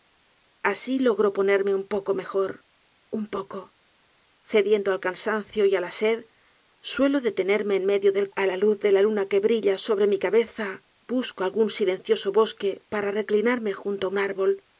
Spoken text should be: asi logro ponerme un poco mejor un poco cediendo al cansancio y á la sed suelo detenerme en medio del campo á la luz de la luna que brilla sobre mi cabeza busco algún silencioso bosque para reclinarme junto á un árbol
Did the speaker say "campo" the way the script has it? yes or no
no